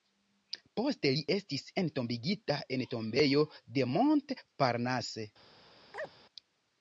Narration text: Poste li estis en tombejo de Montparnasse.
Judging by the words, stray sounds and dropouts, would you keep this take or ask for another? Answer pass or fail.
fail